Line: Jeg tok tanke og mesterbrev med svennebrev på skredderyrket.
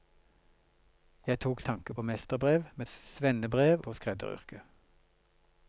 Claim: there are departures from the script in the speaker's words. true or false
false